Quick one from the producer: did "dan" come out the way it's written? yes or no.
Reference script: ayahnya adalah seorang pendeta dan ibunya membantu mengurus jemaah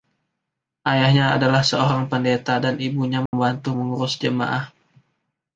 yes